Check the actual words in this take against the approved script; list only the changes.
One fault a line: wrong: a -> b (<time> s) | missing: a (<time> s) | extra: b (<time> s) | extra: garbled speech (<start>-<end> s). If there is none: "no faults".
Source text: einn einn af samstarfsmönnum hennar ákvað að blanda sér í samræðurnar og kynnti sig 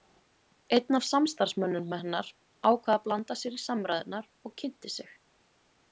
missing: einn (1.0 s)